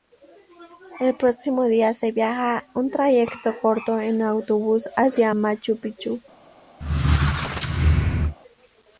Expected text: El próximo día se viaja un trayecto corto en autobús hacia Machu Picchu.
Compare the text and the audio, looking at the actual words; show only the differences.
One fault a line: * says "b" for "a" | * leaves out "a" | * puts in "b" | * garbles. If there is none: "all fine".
all fine